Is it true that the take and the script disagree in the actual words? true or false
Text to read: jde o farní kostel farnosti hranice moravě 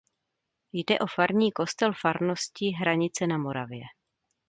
true